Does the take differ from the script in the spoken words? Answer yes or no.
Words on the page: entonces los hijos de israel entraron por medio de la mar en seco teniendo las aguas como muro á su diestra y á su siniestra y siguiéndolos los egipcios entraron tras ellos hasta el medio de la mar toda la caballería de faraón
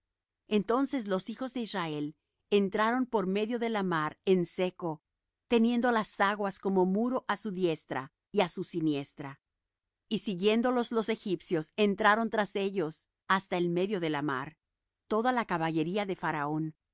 no